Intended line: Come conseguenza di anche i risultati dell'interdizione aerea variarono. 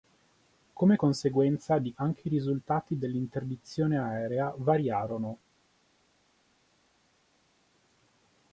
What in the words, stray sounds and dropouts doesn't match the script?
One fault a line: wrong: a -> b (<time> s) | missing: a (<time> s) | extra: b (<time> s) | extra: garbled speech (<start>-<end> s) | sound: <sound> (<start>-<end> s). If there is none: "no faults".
no faults